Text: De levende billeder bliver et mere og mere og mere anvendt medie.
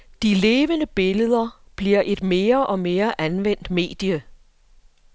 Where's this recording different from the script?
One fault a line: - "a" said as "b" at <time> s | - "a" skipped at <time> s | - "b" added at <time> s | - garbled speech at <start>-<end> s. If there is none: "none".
- "og mere" skipped at 3.2 s